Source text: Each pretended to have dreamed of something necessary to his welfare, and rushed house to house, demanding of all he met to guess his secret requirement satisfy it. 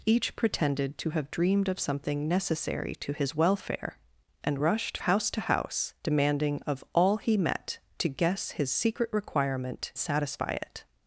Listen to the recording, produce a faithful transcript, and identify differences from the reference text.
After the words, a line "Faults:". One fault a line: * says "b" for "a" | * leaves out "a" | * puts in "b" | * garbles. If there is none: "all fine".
Each pretended to have dreamed of something necessary to his welfare, and rushed house to house, demanding of all he met to guess his secret requirement satisfy it.
Faults:
all fine